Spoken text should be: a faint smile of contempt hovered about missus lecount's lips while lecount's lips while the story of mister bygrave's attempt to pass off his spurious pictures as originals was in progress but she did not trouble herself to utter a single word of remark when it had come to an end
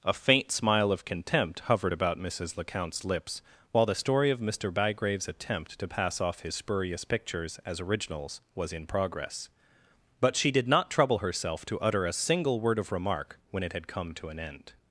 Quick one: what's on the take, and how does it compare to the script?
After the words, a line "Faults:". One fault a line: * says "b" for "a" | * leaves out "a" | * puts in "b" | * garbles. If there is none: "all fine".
a faint smile of contempt hovered about missus lecount's lips while the story of mister bygrave's attempt to pass off his spurious pictures as originals was in progress but she did not trouble herself to utter a single word of remark when it had come to an end
Faults:
* leaves out "lecount's lips while"